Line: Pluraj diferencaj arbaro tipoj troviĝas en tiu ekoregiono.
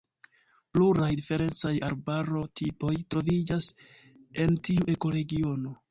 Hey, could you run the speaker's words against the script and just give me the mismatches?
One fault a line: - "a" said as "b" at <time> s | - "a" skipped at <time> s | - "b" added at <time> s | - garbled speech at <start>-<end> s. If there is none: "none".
none